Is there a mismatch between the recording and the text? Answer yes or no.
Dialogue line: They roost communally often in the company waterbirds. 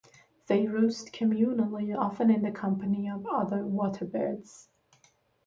yes